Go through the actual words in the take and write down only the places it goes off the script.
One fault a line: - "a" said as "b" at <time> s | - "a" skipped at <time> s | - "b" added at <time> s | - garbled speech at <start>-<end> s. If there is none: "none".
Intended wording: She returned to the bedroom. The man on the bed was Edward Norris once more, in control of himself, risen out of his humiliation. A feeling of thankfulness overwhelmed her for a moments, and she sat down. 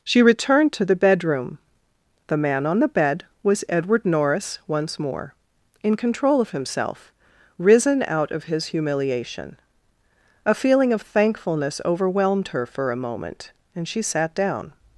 - "moments" said as "moment" at 13.0 s